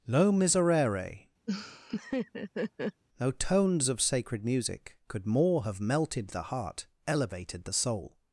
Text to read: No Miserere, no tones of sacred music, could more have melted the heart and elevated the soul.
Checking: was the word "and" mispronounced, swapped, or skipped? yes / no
yes